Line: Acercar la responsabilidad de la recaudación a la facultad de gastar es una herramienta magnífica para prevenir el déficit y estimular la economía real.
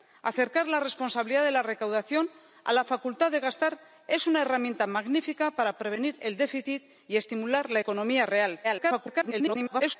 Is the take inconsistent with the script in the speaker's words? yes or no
yes